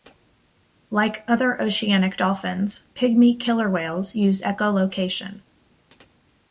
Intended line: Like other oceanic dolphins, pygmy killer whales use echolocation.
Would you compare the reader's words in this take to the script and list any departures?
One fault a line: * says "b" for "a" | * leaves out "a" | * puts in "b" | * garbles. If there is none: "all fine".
all fine